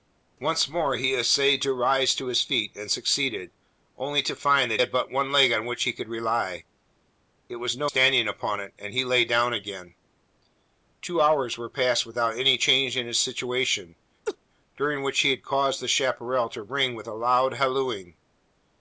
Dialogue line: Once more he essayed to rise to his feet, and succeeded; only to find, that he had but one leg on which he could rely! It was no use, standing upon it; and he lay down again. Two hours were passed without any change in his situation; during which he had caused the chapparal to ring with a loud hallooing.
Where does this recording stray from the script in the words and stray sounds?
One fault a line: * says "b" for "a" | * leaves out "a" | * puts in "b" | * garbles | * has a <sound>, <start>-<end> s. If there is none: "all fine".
* leaves out "he"
* leaves out "use"
* has a laugh, 14.3-14.4 s